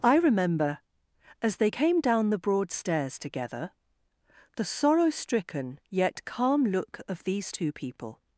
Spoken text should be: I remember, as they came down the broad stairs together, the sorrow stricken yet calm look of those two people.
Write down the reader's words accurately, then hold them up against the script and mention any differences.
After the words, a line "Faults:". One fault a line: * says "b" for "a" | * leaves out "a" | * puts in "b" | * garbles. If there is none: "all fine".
I remember, as they came down the broad stairs together, the sorrow stricken yet calm look of these two people.
Faults:
* says "these" for "those"